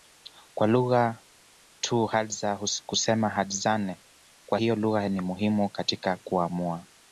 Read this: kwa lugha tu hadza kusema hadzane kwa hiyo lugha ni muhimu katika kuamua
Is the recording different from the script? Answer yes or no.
no